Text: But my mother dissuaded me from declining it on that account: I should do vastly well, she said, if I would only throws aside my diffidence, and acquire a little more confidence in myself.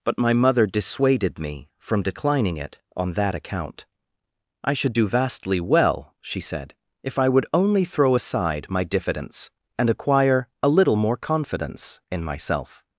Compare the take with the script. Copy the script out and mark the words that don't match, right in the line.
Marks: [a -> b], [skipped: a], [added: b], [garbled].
But my mother dissuaded me from declining it on that account: I should do vastly well, she said, if I would only [throws -> throw] aside my diffidence, and acquire a little more confidence in myself.